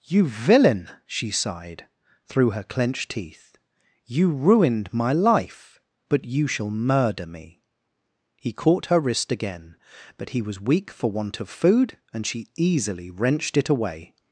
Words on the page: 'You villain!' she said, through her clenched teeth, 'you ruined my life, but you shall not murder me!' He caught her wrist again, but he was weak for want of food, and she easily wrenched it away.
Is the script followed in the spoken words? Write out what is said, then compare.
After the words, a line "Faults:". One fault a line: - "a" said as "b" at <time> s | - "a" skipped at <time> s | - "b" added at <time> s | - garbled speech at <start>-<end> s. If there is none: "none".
'You villain!' she sighed, through her clenched teeth, 'you ruined my life, but you shall murder me!' He caught her wrist again, but he was weak for want of food, and she easily wrenched it away.
Faults:
- "said" said as "sighed" at 1.3 s
- "not" skipped at 6.7 s